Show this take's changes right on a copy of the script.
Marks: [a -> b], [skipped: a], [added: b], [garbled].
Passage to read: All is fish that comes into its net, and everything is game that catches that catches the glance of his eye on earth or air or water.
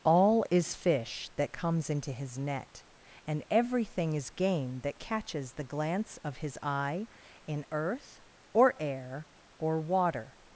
All is fish that comes into [its -> his] net, and everything is game that catches [skipped: that catches] the glance of his eye [on -> in] earth or air or water.